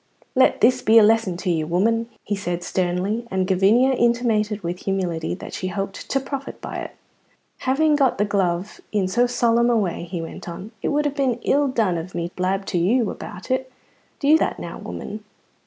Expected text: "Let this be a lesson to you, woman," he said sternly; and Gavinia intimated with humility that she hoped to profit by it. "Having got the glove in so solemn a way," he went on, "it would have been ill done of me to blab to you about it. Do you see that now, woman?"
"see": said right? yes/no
no